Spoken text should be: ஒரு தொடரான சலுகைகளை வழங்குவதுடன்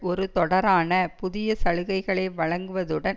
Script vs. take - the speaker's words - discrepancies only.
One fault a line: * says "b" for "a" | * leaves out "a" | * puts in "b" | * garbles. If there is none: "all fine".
* puts in "புதிய"